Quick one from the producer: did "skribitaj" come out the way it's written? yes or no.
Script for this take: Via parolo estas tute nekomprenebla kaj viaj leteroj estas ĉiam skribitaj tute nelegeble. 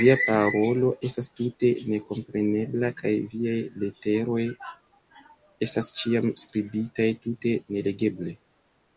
yes